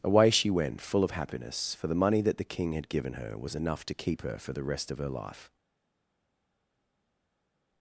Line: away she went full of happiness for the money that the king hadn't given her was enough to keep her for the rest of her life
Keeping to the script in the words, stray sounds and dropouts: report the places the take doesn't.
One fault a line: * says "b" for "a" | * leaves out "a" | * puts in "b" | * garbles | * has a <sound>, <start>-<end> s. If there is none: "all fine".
* says "had" for "hadn't"